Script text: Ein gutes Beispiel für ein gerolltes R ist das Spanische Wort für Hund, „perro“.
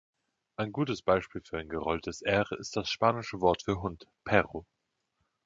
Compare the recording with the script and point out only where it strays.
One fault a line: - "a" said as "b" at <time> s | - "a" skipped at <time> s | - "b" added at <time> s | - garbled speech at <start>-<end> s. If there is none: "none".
none